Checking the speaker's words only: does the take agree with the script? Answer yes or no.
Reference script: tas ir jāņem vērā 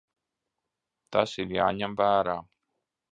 yes